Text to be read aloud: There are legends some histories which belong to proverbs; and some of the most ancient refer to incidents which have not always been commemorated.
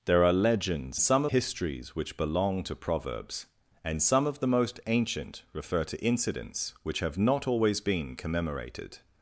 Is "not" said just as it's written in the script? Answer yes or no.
yes